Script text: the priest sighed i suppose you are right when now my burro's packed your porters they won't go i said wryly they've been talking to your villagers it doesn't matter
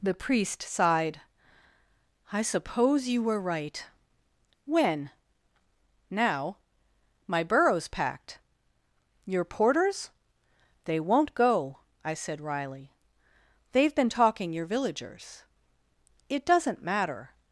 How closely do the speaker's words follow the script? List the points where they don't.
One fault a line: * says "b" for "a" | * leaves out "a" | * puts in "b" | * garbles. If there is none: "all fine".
* says "were" for "are"
* leaves out "to"